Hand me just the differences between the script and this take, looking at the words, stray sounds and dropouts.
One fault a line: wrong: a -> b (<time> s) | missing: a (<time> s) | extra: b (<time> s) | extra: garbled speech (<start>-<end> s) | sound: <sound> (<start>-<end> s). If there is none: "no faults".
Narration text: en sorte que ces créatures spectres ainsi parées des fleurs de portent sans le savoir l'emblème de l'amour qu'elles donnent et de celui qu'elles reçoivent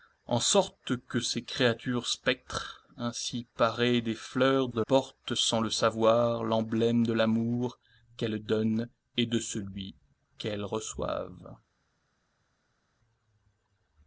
no faults